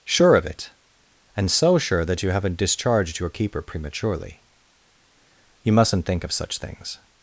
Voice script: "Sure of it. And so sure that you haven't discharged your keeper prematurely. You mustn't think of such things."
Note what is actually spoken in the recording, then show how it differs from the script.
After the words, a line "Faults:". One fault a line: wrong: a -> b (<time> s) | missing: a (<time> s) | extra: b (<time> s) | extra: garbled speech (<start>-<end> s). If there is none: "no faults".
"Sure of it. And so sure that you haven't discharged your keeper prematurely. You mustn't think of such things."
Faults:
no faults